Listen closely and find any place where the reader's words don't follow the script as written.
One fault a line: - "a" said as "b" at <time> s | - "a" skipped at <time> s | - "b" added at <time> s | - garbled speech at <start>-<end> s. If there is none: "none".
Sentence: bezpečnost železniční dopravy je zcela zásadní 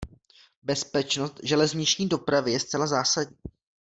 none